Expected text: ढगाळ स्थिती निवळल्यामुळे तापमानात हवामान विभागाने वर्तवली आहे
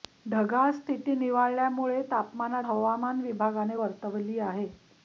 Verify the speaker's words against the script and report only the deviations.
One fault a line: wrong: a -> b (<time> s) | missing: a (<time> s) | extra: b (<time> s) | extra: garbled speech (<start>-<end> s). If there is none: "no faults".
no faults